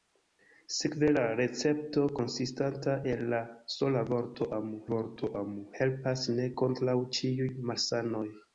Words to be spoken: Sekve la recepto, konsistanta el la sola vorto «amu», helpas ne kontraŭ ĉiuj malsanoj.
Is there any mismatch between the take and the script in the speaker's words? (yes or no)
yes